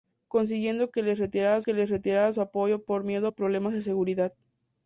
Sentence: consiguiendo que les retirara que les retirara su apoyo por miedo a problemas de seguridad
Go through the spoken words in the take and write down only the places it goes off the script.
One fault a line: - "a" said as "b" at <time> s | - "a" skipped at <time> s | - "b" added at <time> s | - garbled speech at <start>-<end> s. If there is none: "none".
none